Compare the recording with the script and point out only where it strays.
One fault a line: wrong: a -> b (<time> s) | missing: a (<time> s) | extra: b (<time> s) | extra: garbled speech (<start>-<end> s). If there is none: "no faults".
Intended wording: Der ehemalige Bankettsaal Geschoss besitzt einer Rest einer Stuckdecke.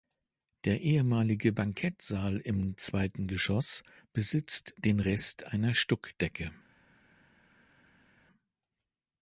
extra: im zweiten (2.4 s)
wrong: einer -> den (4.8 s)